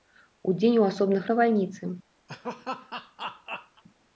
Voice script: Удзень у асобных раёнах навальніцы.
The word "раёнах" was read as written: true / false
false